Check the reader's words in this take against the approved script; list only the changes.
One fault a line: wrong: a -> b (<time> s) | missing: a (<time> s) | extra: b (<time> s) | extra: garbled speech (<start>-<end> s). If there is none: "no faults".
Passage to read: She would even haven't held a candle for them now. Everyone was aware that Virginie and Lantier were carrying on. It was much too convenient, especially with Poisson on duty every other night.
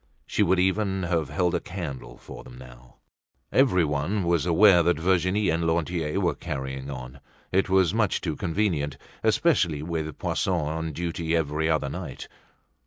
wrong: haven't -> have (1.0 s)